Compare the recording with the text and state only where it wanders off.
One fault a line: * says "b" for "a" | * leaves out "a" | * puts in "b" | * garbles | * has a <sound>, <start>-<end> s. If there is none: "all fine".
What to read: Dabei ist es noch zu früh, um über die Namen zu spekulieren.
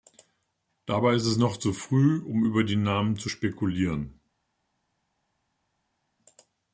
all fine